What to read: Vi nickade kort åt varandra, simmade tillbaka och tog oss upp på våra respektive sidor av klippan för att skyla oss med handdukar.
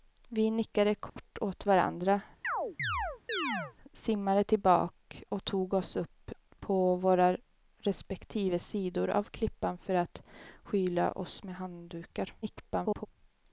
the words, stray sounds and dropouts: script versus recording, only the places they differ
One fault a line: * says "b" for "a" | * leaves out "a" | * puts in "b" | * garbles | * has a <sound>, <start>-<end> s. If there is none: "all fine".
* has a dropout, 1.1-1.2 s
* has a chirp, 2.4-3.7 s
* garbles